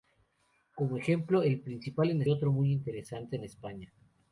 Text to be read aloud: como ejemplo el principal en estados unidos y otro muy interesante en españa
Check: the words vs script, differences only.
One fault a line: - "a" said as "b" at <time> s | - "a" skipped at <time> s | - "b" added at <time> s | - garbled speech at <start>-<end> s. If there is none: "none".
- "estados unidos y" skipped at 2.2 s